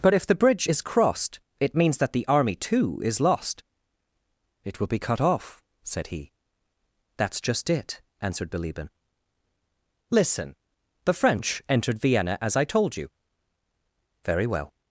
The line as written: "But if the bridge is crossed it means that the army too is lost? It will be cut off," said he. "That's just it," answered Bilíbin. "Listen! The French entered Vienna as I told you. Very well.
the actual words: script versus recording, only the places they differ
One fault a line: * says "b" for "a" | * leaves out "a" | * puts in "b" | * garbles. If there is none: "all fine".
all fine